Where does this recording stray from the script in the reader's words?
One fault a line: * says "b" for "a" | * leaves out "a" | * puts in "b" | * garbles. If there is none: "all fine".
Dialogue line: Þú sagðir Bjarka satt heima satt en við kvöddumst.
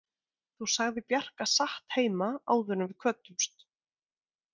* says "áður" for "satt"